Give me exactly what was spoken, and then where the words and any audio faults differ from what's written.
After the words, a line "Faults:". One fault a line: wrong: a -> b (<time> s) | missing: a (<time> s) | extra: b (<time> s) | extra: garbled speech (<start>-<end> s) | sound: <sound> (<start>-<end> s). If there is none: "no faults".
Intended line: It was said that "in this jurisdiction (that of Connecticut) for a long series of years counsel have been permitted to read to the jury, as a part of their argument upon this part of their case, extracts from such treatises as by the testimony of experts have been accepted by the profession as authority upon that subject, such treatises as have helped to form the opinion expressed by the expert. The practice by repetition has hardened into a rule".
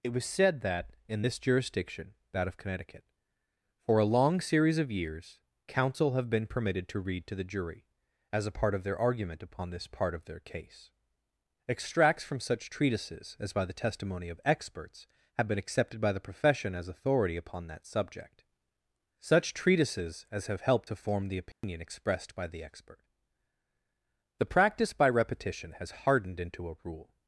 It was said that "in this jurisdiction (that of Connecticut) for a long series of years counsel have been permitted to read to the jury, as a part of their argument upon this part of their case, extracts from such treatises as by the testimony of experts have been accepted by the profession as authority upon that subject, such treatises as have helped to form the opinion expressed by the expert. The practice by repetition has hardened into a rule".
Faults:
sound: dropout (21.5-21.6 s)